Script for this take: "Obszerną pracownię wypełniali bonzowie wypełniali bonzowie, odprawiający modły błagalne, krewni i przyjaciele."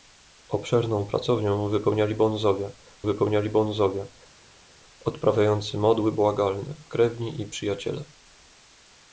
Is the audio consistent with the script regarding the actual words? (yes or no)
yes